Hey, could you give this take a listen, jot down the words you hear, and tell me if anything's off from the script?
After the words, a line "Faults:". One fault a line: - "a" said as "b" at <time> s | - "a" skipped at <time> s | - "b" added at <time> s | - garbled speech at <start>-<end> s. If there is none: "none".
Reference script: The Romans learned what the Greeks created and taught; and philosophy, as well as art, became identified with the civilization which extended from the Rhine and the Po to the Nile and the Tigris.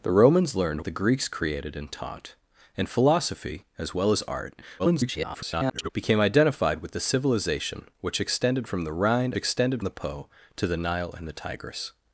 The Romans learned the Greeks created and taught; and philosophy, as well as art, [garbled] became identified with the civilization which extended from the Rhine extended the Po to the Nile and the Tigris.
Faults:
- "what" skipped at 0.8 s
- garbled speech at 4.8-5.9 s
- "and" said as "extended" at 9.3 s